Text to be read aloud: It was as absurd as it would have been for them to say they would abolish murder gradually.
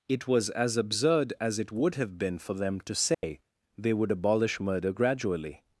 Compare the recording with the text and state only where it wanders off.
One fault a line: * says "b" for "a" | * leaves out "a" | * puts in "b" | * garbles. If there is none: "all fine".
all fine